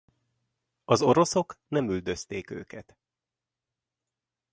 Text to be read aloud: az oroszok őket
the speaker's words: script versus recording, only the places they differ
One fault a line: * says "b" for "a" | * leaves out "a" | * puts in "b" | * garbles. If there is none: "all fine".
* puts in "nem üldözték"